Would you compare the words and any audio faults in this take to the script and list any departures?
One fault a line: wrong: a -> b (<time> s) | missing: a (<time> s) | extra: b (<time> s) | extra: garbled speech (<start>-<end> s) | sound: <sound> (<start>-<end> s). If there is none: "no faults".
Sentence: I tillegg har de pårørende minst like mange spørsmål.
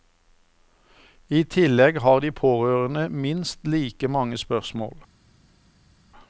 no faults